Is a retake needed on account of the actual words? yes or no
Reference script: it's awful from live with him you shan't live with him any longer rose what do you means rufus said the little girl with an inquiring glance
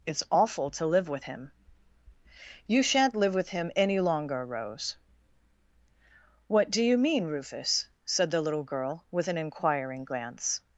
yes